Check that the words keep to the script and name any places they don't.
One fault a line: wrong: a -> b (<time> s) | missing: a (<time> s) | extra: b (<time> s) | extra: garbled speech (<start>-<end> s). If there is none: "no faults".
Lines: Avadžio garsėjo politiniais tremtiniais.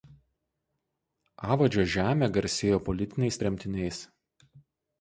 extra: žemė (2.0 s)